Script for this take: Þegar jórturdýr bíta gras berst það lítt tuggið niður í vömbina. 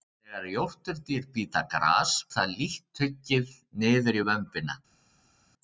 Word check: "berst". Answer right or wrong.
wrong